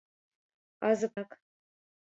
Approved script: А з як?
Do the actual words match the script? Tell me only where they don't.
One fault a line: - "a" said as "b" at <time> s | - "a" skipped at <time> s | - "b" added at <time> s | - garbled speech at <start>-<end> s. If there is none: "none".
none